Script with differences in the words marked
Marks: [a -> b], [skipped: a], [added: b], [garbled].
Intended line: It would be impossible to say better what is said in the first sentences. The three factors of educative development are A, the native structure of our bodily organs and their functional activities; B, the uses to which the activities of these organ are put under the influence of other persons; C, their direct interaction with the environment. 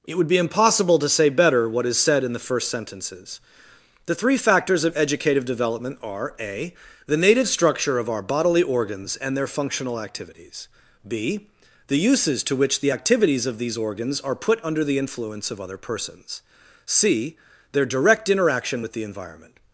It would be impossible to say better what is said in the first sentences. The three factors of educative development are A, the native structure of our bodily organs and their functional activities; B, the uses to which the activities of these [organ -> organs] are put under the influence of other persons; C, their direct interaction with the environment.